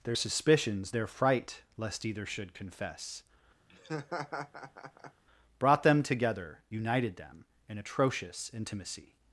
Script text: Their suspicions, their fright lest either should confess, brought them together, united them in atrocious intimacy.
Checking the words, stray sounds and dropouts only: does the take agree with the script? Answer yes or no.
no